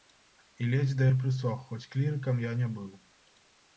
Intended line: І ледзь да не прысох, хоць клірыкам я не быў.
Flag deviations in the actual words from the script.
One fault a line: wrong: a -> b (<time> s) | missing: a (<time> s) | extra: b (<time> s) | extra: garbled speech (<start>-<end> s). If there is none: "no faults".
no faults